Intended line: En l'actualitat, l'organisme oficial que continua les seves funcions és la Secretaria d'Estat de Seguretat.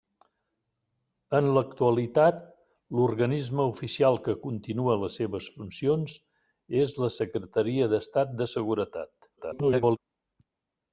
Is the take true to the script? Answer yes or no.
no